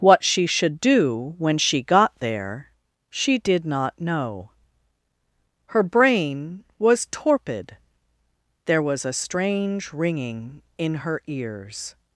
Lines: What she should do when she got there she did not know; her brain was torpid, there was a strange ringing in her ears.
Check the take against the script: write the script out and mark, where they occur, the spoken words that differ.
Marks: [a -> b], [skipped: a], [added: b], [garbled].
What she should do when she got there she did not know; her brain was torpid, there was a strange ringing in her ears.